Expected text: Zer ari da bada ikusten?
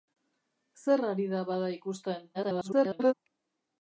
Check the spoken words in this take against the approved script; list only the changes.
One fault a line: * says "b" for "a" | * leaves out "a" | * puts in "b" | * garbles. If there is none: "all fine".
* garbles